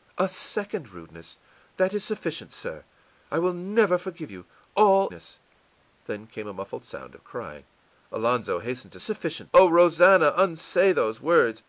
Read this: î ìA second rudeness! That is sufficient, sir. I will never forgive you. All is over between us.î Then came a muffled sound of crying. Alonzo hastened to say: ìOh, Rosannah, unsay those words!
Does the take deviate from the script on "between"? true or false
true